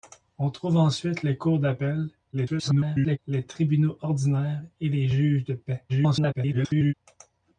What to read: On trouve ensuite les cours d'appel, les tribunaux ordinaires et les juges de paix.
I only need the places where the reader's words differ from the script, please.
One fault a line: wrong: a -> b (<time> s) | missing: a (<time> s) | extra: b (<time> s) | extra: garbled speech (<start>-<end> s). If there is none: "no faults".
extra: garbled speech (2.3-3.2 s)
extra: garbled speech (5.9-6.9 s)